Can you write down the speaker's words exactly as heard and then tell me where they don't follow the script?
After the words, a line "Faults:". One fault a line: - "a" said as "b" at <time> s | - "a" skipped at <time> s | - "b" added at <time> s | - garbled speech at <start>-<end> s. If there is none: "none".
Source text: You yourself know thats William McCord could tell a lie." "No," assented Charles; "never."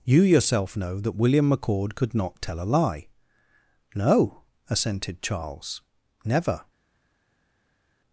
You yourself know that William McCord could not tell a lie." "No," assented Charles; "never."
Faults:
- "thats" said as "that" at 1.0 s
- "not" added at 2.1 s